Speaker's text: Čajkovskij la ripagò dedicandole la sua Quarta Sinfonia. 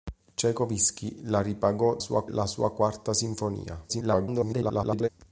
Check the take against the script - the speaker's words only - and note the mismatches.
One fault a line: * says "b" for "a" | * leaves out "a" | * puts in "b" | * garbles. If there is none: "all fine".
* says "sua" for "dedicandole"
* garbles